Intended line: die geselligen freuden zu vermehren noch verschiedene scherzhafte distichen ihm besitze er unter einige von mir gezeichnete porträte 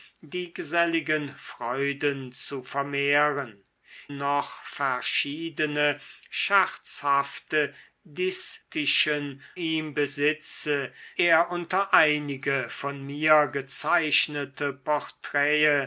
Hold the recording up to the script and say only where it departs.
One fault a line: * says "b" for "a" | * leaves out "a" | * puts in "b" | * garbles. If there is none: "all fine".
all fine